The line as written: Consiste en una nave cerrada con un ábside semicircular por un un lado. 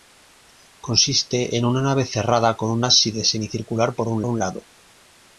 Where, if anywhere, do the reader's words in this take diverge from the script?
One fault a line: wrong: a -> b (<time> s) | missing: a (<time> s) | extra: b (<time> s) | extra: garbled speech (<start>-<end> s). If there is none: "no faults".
no faults